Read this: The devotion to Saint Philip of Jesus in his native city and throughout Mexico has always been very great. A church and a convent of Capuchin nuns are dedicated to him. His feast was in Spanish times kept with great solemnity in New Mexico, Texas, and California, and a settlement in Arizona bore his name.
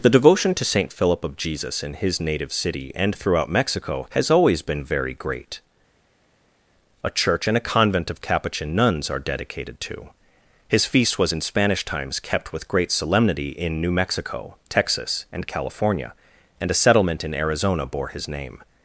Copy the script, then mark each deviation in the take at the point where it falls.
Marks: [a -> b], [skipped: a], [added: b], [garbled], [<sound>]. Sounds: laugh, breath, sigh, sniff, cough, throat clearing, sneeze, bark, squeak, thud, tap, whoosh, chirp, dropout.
The devotion to Saint Philip of Jesus in his native city and throughout Mexico has always been very great. A church and a convent of Capuchin nuns are dedicated to [skipped: him.] His feast was in Spanish times kept with great solemnity in New Mexico, Texas, and California, and a settlement in Arizona bore his name.